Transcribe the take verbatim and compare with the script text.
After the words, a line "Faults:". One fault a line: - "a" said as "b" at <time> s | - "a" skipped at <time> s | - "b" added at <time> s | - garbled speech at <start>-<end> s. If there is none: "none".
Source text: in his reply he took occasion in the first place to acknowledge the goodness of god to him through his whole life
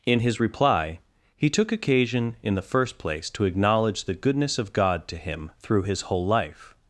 in his reply he took occasion in the first place to acknowledge the goodness of god to him through his whole life
Faults:
none